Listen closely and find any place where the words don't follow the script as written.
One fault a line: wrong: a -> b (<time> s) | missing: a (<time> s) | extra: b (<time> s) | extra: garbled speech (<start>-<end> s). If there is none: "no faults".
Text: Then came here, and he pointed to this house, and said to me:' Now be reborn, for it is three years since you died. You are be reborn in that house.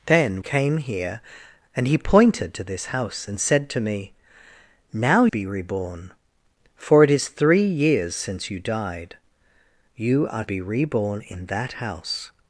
no faults